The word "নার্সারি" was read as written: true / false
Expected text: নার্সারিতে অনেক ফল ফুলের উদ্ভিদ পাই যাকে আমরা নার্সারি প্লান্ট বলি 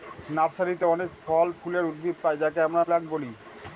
false